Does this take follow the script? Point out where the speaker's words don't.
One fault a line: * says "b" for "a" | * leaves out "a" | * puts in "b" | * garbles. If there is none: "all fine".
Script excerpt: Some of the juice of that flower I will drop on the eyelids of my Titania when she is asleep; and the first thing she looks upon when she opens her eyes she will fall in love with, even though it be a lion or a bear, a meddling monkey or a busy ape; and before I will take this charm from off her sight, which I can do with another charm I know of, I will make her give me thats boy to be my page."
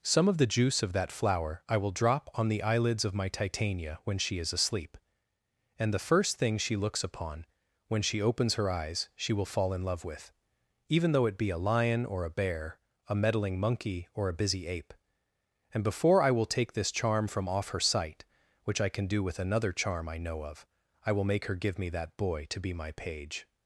* says "that" for "thats"